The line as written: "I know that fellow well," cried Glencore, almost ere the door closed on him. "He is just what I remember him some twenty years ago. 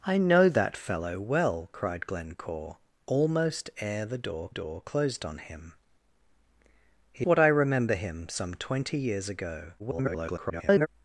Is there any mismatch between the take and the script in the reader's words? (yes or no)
yes